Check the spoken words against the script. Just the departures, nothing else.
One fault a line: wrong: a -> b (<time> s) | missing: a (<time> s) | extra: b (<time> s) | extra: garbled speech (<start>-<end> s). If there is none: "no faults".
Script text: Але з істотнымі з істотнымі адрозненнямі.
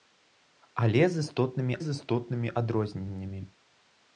no faults